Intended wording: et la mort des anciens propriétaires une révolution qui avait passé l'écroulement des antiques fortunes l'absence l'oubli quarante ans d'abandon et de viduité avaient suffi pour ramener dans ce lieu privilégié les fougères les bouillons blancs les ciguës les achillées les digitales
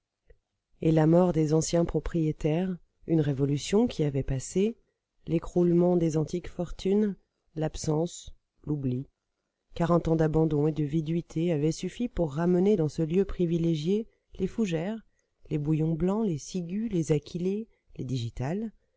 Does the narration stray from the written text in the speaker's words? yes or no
no